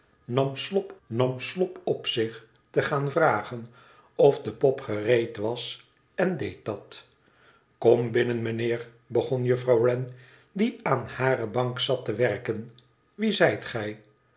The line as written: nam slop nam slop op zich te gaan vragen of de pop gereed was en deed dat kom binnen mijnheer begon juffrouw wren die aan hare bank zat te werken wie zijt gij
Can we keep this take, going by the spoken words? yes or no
yes